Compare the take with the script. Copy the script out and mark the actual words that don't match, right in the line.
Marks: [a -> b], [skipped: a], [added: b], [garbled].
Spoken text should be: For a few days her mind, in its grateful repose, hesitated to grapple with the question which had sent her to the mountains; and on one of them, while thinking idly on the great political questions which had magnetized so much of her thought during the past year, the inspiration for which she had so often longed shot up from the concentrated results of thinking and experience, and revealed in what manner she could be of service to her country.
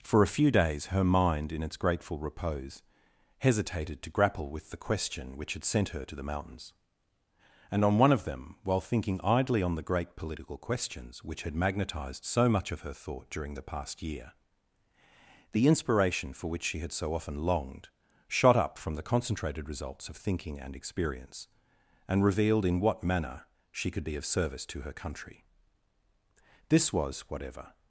For a few days her mind, in its grateful repose, hesitated to grapple with the question which had sent her to the mountains; and on one of them, while thinking idly on the great political questions which had magnetized so much of her thought during the past year, the inspiration for which she had so often longed shot up from the concentrated results of thinking and experience, and revealed in what manner she could be of service to her country. [added: This was whatever]